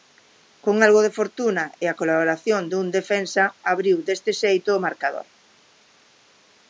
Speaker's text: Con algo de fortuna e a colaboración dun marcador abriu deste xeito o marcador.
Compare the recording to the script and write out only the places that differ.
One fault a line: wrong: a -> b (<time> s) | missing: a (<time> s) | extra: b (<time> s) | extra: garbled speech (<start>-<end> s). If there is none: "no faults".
wrong: marcador -> defensa (3.0 s)